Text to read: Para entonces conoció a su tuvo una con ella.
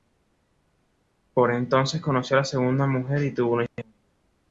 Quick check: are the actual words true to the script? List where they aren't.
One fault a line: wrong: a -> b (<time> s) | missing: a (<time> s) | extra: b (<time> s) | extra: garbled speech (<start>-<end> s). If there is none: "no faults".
wrong: Para -> Por (1.4 s)
extra: segunda mujer y (2.6 s)
extra: hija (3.6 s)